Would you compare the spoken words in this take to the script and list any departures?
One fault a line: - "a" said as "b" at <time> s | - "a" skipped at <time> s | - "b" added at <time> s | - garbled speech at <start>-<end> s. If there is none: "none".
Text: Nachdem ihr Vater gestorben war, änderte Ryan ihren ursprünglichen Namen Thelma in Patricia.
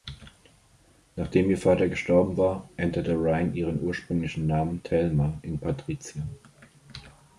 none